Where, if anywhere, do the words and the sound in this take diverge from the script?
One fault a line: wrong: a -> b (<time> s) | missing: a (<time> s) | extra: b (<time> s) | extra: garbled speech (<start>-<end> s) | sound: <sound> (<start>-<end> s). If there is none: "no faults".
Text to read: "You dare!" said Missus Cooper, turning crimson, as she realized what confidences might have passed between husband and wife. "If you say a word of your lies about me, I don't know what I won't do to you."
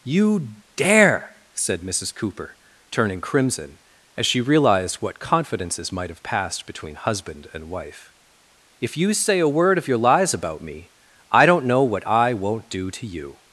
no faults